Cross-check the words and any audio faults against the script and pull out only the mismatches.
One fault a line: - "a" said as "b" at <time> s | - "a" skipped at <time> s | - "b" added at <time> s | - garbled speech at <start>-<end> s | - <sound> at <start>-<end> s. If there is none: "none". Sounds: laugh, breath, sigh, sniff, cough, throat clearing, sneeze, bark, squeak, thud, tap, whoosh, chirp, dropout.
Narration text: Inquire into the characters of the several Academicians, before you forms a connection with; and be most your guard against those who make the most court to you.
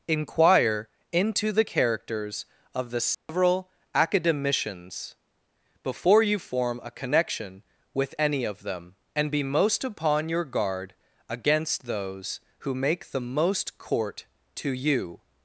- dropout at 3.1-3.3 s
- "forms" said as "form" at 6.4 s
- "any of them" added at 8.2 s
- "upon" added at 9.9 s